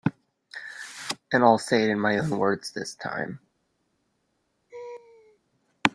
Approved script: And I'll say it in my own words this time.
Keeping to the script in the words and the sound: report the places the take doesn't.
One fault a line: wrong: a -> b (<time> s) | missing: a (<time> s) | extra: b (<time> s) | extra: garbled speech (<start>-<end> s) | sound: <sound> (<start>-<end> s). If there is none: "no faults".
sound: laugh (4.7-5.4 s)